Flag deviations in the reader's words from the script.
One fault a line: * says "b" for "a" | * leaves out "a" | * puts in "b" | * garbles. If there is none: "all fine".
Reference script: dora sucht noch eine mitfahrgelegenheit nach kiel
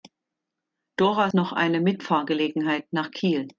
* leaves out "sucht"